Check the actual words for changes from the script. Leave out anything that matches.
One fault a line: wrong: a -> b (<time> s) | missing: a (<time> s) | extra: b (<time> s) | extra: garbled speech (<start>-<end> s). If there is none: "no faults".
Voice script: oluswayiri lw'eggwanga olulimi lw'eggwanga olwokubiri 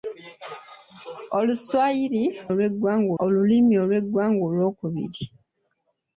no faults